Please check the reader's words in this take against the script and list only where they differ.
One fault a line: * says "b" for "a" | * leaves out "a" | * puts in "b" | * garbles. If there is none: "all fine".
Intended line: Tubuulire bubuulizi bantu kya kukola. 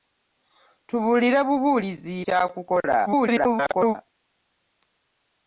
* leaves out "bantu"
* garbles